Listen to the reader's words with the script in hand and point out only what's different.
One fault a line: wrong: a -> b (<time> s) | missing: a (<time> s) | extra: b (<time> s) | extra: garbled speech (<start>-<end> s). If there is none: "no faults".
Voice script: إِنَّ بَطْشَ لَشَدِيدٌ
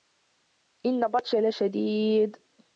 no faults